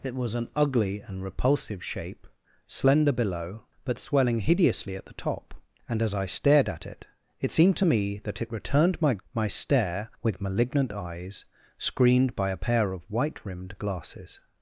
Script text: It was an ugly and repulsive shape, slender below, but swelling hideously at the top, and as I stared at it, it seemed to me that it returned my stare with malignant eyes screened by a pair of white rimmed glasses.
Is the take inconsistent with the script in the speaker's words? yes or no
yes